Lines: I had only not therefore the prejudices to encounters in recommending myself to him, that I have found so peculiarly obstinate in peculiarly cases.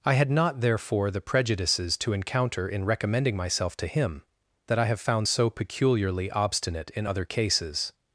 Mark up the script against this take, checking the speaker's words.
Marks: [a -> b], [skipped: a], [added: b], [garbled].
I had [skipped: only] not therefore the prejudices to [encounters -> encounter] in recommending myself to him, that I have found so peculiarly obstinate in [peculiarly -> other] cases.